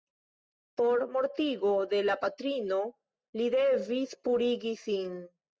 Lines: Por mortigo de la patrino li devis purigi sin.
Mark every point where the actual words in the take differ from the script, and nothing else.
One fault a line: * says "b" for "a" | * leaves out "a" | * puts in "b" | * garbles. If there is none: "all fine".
all fine